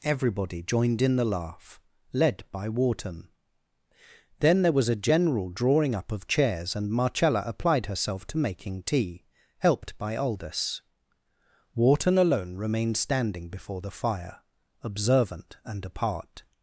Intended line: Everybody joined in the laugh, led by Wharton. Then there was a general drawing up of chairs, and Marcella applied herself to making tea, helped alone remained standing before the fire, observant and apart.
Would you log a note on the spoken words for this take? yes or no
yes